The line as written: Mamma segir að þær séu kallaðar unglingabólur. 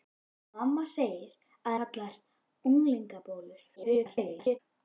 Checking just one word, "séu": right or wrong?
wrong